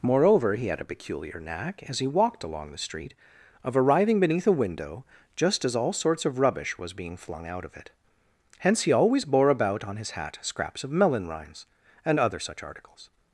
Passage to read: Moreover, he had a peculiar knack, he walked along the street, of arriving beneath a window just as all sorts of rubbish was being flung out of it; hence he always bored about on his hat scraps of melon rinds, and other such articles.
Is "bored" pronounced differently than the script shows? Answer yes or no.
yes